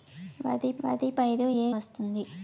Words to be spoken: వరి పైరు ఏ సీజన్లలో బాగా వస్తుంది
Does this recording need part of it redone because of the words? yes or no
yes